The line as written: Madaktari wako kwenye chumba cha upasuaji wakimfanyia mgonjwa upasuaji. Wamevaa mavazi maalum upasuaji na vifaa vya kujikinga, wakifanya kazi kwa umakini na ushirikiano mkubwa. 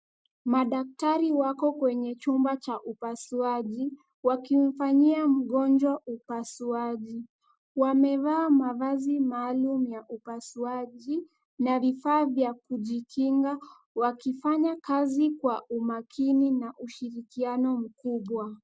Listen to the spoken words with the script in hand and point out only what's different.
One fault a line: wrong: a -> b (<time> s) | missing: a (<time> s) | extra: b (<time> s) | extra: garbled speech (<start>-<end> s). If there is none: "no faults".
extra: ya (9.9 s)